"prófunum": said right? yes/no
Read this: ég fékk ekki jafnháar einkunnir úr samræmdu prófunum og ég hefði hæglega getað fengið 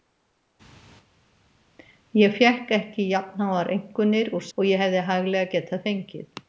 no